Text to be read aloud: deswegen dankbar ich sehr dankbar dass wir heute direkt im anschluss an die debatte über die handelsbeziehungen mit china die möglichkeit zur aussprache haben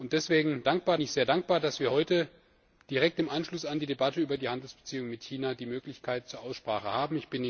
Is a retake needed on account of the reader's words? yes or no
no